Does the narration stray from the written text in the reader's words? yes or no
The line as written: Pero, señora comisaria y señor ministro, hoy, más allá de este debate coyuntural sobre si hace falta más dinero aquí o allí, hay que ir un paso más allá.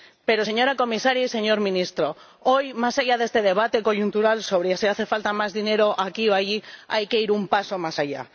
no